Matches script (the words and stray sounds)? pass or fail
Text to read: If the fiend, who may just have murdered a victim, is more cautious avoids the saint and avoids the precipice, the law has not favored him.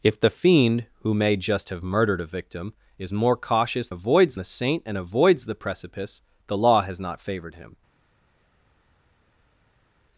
pass